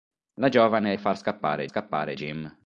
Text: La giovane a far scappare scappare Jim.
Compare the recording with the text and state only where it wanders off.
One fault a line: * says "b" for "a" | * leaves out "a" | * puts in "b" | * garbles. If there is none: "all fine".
all fine